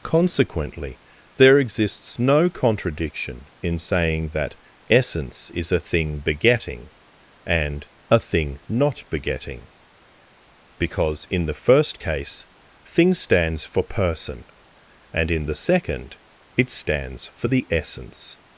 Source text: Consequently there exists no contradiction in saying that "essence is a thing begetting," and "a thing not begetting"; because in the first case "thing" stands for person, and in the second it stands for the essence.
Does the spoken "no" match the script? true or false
true